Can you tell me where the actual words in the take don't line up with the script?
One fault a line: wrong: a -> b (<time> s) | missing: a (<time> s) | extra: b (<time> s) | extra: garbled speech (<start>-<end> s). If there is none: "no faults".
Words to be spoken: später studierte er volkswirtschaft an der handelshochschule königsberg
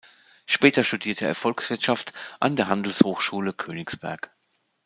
no faults